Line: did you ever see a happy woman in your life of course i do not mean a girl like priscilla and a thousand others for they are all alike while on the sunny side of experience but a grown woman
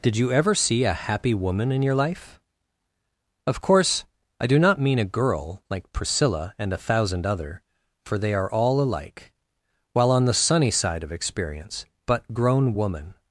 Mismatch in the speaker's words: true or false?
true